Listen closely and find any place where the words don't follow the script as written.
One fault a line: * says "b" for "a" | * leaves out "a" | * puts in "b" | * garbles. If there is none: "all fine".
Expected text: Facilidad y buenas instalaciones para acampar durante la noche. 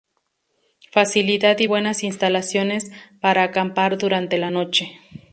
all fine